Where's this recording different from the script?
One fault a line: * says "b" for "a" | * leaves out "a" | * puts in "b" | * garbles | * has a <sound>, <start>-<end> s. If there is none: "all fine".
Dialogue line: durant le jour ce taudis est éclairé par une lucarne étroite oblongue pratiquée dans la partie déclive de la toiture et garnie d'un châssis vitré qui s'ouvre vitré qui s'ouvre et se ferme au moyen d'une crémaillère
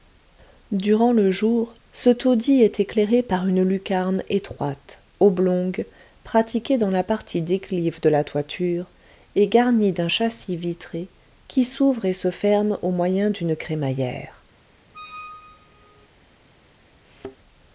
* leaves out "vitré qui s'ouvre"
* has a squeak, 14.9-16.1 s
* has a thud, 17.0-17.4 s